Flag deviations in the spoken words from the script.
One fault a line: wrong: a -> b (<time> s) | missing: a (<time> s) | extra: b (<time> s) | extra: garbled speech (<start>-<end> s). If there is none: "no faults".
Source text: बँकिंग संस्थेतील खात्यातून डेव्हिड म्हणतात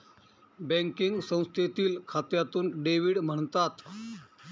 no faults